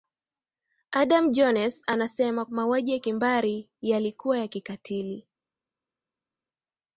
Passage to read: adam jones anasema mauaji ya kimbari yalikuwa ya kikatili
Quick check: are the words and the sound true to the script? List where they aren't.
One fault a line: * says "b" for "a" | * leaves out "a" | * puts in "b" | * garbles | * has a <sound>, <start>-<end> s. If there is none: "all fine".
all fine